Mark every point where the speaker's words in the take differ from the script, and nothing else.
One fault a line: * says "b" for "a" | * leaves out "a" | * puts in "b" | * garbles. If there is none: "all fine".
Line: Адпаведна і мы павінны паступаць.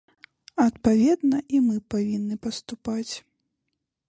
all fine